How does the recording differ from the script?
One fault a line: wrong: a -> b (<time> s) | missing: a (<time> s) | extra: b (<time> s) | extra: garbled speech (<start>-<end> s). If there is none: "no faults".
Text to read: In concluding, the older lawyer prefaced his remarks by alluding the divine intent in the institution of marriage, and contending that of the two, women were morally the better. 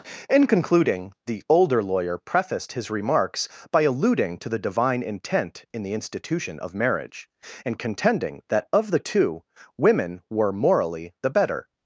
extra: to (4.4 s)